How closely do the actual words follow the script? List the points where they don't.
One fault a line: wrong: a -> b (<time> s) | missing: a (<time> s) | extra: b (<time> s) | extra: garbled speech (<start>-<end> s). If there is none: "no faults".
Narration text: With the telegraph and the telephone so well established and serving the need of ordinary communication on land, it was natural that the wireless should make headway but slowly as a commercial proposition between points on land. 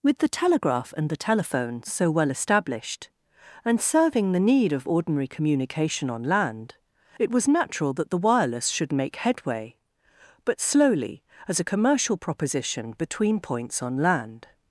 no faults